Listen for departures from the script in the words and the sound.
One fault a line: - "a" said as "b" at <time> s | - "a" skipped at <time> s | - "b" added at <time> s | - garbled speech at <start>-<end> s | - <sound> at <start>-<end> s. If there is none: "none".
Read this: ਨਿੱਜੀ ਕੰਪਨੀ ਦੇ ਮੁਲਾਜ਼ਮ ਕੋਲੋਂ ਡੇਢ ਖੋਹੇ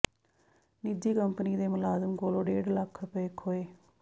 - "ਲੱਖ ਰੁਪਏ" added at 2.7 s